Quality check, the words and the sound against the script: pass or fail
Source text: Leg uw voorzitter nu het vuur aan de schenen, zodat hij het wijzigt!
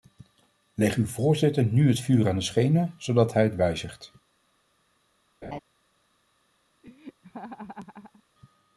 fail